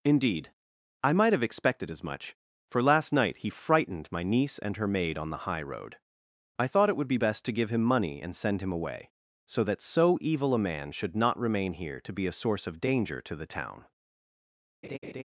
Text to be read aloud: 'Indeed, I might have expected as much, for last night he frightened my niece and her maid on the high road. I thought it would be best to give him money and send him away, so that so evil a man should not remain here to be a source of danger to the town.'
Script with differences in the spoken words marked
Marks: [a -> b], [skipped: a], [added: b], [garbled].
'Indeed, I might have expected as much, for last night he frightened my niece and her maid on the high road. I thought it would be best to give him money and send him away, so that so evil a man should not remain here to be a source of danger to the town.'